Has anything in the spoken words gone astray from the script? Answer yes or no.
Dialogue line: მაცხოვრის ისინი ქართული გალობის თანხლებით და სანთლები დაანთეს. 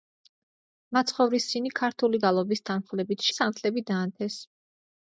no